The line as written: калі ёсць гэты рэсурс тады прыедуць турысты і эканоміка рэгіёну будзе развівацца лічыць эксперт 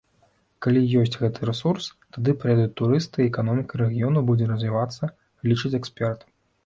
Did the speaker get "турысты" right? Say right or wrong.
right